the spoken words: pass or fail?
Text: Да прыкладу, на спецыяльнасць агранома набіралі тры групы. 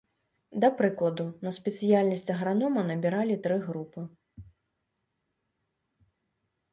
pass